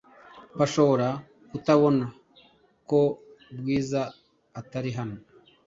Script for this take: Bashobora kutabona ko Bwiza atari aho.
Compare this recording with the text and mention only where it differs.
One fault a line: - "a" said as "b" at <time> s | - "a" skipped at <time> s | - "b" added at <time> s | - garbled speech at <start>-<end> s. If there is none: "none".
- "aho" said as "hano" at 5.0 s